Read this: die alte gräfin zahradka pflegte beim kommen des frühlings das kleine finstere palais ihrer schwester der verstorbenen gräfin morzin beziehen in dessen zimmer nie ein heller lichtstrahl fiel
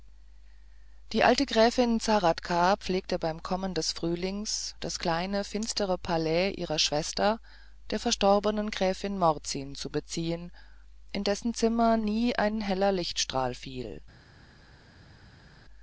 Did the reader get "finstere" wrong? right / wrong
right